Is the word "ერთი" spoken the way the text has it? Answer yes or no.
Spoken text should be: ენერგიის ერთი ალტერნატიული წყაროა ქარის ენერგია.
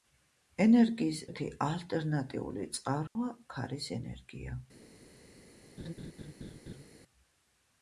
yes